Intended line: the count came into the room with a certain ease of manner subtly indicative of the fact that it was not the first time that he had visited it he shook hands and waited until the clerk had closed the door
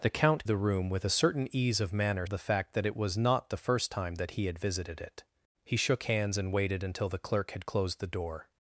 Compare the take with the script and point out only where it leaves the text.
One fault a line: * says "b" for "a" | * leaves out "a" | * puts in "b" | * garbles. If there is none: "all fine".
* leaves out "came into"
* leaves out "subtly indicative of"